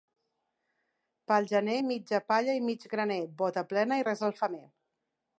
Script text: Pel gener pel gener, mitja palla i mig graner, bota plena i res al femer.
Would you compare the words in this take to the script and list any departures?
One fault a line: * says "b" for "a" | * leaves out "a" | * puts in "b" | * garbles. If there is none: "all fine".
* leaves out "pel gener"